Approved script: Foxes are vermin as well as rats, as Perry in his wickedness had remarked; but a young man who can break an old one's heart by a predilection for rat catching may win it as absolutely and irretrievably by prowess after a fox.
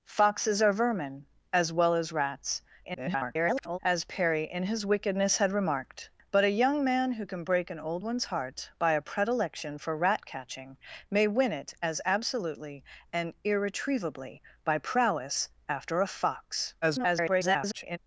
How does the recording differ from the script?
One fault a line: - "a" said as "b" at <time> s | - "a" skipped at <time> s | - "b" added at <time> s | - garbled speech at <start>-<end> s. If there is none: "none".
- garbled speech at 2.8-3.8 s
- garbled speech at 16.8-18.0 s